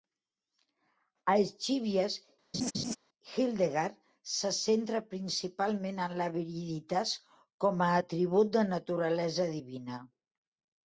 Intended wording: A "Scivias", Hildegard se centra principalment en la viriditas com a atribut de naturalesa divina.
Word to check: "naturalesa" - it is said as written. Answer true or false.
true